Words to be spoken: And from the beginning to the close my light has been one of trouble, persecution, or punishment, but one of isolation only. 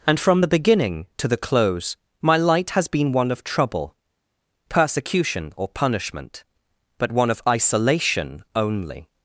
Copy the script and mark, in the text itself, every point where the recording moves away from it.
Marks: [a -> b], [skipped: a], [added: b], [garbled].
And from the beginning to the close my light has been one of trouble, persecution, or punishment, but one of isolation only.